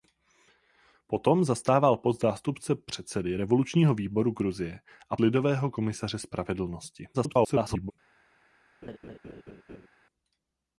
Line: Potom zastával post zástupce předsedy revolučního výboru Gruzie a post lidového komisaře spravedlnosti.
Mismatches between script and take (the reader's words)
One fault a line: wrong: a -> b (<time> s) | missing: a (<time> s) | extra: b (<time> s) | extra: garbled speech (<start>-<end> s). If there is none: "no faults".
missing: post (5.2 s)
extra: garbled speech (7.1-7.9 s)